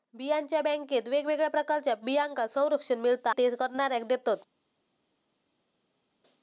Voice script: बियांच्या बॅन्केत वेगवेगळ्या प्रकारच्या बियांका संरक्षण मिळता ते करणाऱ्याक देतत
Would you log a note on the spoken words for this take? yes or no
no